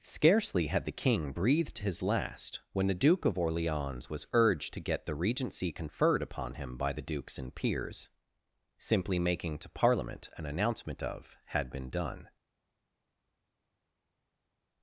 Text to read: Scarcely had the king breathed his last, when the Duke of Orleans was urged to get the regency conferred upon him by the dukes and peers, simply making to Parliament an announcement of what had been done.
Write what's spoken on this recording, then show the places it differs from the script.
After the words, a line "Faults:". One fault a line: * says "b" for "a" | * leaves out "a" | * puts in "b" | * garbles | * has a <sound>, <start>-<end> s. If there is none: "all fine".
Scarcely had the king breathed his last, when the Duke of Orleans was urged to get the regency conferred upon him by the dukes and peers, simply making to Parliament an announcement of had been done.
Faults:
* leaves out "what"